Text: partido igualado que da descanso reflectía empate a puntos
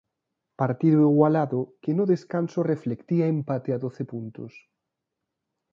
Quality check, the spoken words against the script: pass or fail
fail